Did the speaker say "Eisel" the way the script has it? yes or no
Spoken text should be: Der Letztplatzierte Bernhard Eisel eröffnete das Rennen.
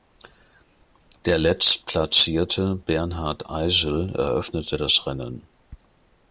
yes